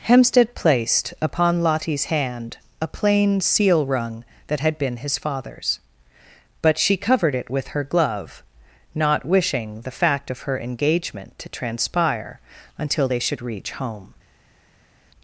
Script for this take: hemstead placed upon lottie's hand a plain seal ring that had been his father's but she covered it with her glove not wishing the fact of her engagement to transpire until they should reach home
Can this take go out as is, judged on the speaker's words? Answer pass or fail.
fail